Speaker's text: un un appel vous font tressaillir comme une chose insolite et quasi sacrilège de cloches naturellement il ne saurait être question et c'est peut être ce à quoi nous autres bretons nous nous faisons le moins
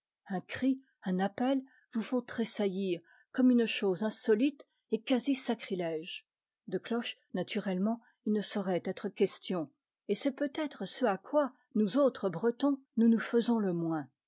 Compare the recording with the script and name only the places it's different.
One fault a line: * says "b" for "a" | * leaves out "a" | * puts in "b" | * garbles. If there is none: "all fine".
* puts in "cri"